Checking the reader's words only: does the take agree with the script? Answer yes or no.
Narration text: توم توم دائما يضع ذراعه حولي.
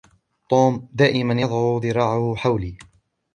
no